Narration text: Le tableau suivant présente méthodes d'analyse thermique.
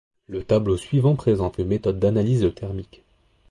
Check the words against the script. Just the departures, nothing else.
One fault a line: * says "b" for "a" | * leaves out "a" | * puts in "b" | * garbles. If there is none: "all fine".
all fine